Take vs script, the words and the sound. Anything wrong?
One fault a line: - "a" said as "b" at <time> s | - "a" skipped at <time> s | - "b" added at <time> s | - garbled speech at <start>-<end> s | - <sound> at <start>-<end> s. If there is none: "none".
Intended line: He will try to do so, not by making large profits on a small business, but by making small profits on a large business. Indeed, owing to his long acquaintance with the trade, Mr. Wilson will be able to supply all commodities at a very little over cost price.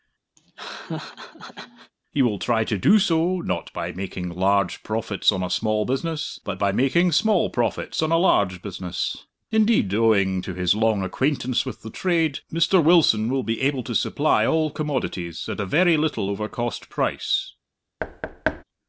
- laugh at 0.4-1.9 s
- thud at 18.0-18.6 s